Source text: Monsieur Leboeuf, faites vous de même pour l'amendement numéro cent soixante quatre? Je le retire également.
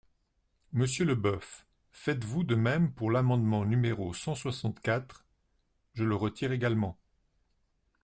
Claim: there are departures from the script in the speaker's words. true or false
false